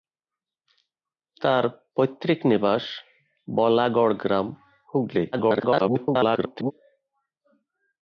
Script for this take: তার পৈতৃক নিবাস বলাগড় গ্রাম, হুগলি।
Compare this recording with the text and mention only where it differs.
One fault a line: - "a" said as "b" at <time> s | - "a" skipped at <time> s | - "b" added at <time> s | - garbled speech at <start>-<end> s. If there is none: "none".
- garbled speech at 5.3-6.7 s